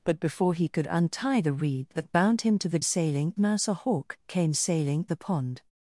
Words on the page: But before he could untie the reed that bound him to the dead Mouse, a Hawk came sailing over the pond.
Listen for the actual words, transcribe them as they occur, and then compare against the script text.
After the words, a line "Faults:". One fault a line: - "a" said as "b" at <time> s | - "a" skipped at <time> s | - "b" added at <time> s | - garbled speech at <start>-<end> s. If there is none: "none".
But before he could untie the reed that bound him to the sailing Mouse, a Hawk came sailing the pond.
Faults:
- "dead" said as "sailing" at 2.8 s
- "over" skipped at 5.1 s